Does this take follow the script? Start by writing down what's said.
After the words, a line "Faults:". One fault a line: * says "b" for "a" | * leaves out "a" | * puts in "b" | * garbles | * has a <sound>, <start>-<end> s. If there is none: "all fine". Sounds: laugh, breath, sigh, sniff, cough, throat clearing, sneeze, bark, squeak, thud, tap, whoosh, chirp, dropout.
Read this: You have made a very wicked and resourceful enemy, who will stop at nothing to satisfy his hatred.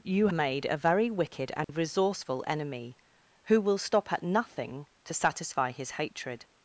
You made a very wicked and resourceful enemy, who will stop at nothing to satisfy his hatred.
Faults:
* leaves out "have"
* has a dropout, 1.6-1.7 s